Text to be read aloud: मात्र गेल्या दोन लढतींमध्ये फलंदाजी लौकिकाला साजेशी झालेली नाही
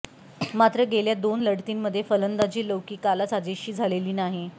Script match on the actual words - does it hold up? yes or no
yes